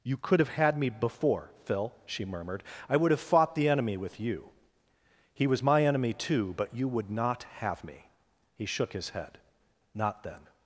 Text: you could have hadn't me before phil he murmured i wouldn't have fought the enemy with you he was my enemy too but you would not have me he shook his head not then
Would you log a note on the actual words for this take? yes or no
yes